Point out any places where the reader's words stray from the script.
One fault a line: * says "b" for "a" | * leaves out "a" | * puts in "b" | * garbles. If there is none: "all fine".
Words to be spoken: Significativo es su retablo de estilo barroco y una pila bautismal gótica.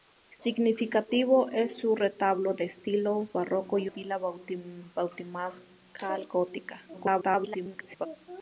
* leaves out "una"
* garbles